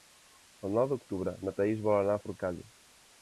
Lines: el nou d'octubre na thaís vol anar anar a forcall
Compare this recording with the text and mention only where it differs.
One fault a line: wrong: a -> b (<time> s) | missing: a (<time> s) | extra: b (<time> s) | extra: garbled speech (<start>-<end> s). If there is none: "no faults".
missing: anar (2.2 s)